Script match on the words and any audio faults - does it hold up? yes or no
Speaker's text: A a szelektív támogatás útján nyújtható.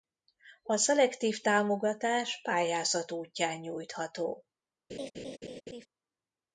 no